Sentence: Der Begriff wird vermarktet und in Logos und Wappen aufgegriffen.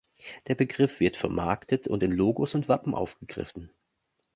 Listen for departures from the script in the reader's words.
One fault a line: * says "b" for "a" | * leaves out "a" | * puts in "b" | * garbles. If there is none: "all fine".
all fine